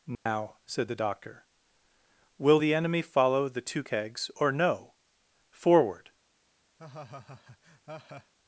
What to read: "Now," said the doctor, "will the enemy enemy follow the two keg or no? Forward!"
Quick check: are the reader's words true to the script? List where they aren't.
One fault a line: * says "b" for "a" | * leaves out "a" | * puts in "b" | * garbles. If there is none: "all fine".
* leaves out "enemy"
* says "kegs" for "keg"